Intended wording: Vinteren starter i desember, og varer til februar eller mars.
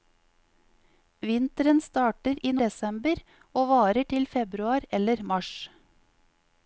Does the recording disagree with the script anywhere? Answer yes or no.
no